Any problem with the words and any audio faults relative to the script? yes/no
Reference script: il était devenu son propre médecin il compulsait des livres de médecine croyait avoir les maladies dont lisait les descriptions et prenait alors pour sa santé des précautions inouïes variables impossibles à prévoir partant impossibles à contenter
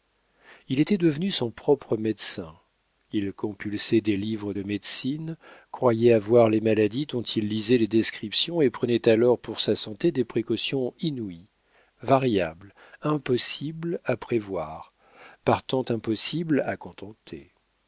yes